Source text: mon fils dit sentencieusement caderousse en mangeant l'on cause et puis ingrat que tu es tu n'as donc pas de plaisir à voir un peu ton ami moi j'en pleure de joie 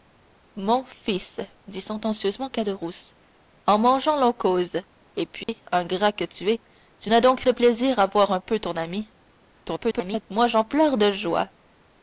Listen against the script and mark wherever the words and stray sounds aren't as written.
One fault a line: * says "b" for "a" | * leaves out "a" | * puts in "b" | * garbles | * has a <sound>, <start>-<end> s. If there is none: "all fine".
* has a dropout, 5.4-5.5 s
* leaves out "pas"
* garbles